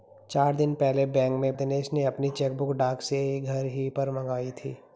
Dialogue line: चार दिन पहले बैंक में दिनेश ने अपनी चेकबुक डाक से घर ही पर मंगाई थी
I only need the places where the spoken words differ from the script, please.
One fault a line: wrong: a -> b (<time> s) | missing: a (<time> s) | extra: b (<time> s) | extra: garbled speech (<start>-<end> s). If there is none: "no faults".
no faults